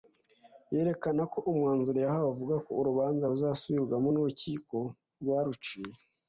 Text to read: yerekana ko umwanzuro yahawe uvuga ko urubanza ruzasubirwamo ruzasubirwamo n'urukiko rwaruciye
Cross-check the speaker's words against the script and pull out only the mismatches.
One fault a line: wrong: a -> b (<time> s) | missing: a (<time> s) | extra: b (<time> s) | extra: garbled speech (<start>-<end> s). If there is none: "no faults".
missing: ruzasubirwamo (4.1 s)